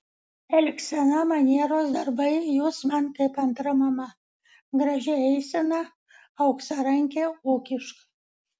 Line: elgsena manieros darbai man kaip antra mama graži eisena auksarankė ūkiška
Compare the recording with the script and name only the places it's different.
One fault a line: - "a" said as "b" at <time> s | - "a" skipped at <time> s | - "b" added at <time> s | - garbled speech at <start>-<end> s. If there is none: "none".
- "jūs" added at 2.4 s